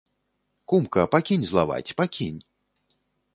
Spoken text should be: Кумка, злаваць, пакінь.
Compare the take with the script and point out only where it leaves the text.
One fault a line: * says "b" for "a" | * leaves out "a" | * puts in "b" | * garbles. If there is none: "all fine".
* puts in "пакінь"